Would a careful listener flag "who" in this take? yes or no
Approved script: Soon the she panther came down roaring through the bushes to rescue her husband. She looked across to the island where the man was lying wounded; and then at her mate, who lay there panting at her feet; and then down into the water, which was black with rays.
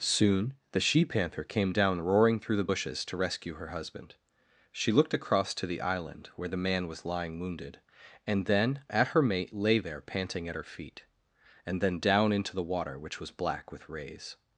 yes